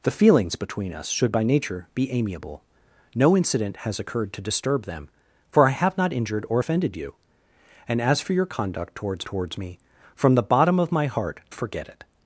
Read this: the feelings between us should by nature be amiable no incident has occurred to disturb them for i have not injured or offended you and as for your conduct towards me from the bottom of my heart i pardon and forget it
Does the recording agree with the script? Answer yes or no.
no